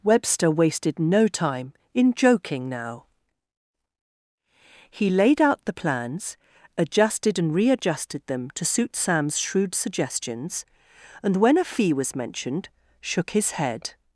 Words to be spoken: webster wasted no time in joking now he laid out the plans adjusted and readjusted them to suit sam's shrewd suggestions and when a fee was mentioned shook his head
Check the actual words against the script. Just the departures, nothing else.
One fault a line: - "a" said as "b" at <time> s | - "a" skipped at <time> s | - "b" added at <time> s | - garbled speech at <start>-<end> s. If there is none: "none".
none